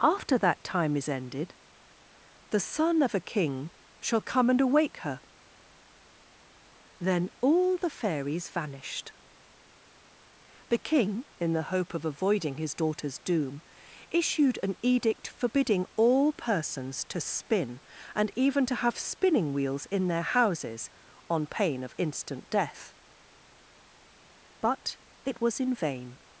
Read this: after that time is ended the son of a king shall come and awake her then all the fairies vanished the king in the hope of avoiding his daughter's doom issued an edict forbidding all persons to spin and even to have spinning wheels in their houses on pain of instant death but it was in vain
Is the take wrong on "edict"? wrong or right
right